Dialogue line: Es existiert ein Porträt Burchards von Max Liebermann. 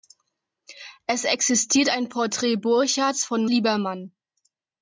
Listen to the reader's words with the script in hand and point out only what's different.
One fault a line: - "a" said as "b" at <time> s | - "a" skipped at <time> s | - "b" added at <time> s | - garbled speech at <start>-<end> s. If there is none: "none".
- "Max" skipped at 3.5 s